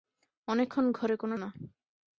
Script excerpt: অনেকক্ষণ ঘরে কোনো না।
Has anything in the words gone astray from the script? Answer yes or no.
no